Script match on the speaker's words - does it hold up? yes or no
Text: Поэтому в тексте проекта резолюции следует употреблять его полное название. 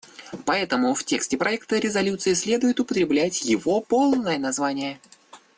yes